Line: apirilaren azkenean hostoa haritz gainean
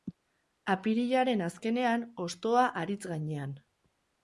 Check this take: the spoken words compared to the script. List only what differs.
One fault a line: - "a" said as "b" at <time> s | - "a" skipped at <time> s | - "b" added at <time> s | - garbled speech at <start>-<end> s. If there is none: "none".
none